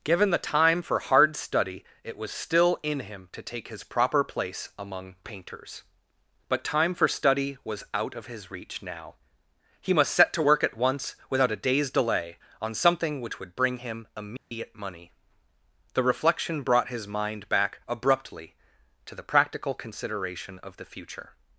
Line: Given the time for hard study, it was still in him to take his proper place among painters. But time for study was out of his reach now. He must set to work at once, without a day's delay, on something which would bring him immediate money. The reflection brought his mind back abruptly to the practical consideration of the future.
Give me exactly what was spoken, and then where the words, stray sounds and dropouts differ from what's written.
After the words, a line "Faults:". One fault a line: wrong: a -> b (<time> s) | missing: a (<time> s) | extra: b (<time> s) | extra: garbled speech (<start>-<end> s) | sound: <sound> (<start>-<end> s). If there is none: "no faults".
Given the time for hard study, it was still in him to take his proper place among painters. But time for study was out of his reach now. He must set to work at once, without a day's delay, on something which would bring him immediate money. The reflection brought his mind back abruptly to the practical consideration of the future.
Faults:
sound: dropout (14.4-14.5 s)